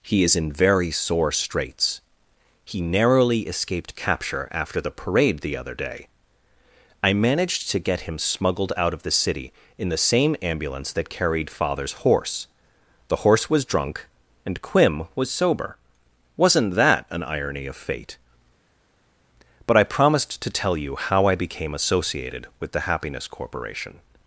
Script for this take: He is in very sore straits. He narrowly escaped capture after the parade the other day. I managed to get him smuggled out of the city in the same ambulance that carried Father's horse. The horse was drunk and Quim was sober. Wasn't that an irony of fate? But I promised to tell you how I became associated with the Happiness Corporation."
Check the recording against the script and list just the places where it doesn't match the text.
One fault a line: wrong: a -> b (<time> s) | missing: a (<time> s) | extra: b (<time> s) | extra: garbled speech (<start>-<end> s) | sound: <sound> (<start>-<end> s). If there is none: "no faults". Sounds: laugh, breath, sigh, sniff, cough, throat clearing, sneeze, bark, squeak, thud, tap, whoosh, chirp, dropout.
no faults